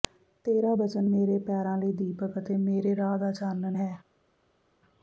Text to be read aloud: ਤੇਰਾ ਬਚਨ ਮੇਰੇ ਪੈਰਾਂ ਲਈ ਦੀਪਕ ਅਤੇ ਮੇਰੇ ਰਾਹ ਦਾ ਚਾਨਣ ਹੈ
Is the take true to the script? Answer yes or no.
yes